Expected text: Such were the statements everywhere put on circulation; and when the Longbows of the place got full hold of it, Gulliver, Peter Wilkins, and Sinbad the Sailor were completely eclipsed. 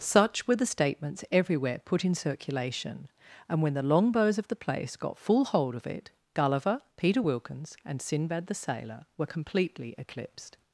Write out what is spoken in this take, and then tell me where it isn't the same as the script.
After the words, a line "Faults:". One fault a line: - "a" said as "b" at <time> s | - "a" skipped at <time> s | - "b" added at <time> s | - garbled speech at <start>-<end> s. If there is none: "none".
Such were the statements everywhere put in circulation; and when the Longbows of the place got full hold of it, Gulliver, Peter Wilkins, and Sinbad the Sailor were completely eclipsed.
Faults:
- "on" said as "in" at 2.0 s